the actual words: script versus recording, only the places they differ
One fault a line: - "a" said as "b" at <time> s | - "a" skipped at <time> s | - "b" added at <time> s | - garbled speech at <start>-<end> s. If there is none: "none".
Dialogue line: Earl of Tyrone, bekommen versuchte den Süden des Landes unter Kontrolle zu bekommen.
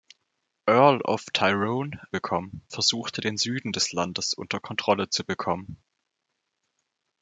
none